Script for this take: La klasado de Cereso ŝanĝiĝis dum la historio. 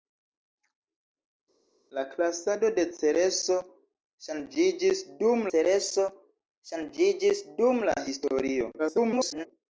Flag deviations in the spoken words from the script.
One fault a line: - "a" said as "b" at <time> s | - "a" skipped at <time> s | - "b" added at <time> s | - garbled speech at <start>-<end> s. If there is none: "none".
- "Cereso ŝanĝiĝis dum" added at 5.5 s
- garbled speech at 8.8-9.5 s